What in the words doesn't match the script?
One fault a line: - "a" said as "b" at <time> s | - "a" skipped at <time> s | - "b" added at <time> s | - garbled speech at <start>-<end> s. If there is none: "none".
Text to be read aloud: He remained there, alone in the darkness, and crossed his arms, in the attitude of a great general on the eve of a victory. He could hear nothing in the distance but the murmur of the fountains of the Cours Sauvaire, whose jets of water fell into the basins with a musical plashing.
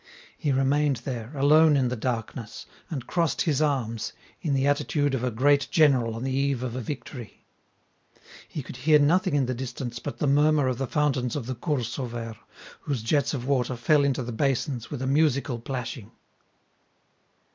none